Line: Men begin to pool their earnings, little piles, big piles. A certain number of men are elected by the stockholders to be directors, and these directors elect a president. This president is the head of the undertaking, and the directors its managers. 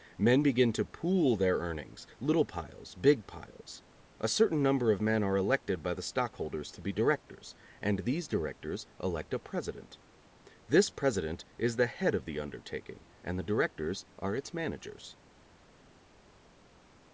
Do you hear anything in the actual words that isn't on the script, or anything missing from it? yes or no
yes